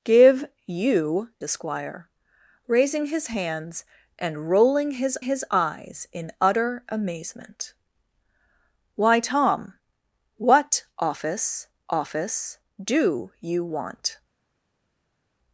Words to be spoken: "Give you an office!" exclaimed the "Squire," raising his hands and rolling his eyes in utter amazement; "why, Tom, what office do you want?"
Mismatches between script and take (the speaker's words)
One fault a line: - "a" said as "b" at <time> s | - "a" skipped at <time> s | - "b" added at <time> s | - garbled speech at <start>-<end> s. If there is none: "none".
- "an office exclaimed" skipped at 1.3 s
- "his" added at 5.2 s
- "office" added at 11.9 s